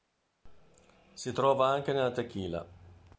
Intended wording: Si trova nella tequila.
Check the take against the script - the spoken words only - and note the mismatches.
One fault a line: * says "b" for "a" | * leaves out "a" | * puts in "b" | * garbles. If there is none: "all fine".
* puts in "anche"